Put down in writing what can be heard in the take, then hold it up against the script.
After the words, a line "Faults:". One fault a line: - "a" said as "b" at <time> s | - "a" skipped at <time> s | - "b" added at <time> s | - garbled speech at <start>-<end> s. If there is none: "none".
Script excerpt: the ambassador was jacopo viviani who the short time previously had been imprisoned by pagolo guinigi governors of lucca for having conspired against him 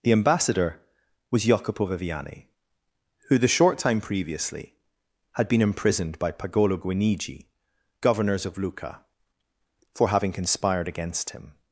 the ambassador was jacopo viviani who the short time previously had been imprisoned by pagolo guinigi governors of lucca for having conspired against him
Faults:
none